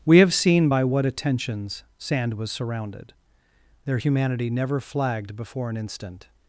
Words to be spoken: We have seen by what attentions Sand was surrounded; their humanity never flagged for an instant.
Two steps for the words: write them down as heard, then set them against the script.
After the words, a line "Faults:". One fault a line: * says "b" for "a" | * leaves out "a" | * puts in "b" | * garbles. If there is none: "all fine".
We have seen by what attentions Sand was surrounded; their humanity never flagged before an instant.
Faults:
* says "before" for "for"